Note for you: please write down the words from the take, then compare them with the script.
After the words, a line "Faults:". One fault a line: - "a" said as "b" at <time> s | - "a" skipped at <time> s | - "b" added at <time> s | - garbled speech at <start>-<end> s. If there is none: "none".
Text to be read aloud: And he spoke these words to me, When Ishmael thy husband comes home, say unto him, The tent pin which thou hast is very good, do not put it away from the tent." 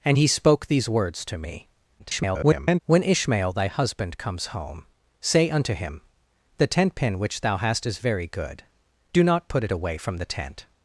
And he spoke these words to me, [garbled] When Ishmael thy husband comes home, say unto him, The tent pin which thou hast is very good, do not put it away from the tent."
Faults:
- garbled speech at 2.0-2.8 s